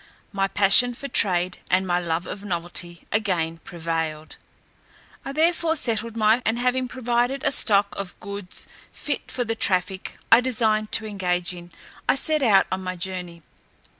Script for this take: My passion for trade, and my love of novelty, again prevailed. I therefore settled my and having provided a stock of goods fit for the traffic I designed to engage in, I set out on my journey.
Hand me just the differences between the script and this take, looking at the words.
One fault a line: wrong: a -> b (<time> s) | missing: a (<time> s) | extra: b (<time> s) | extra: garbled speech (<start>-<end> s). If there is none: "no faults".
no faults